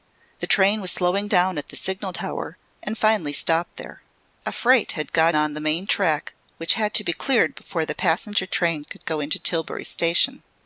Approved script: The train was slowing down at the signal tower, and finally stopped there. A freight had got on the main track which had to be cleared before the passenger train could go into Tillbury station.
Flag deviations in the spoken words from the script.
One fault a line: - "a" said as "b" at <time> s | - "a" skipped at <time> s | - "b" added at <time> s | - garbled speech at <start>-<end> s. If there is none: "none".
none